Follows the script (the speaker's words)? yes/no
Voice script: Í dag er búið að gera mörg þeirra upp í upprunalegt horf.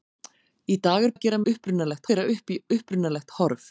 no